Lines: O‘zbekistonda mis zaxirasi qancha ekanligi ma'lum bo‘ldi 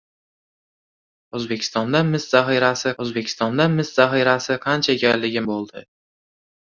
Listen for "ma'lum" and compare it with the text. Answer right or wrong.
wrong